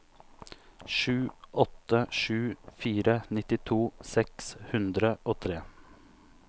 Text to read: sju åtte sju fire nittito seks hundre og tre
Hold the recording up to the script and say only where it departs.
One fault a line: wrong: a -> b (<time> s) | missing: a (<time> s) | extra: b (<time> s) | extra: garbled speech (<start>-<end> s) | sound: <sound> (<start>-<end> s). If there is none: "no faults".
no faults